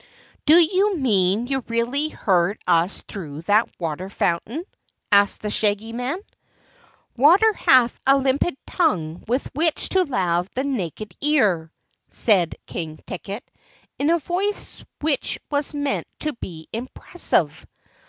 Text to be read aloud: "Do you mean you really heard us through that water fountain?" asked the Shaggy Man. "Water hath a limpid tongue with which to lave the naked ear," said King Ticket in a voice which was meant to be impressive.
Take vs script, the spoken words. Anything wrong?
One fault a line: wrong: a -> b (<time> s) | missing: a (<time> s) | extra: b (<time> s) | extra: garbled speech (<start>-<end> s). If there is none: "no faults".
no faults